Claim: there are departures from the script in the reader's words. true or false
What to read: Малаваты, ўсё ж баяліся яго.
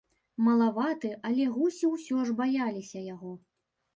true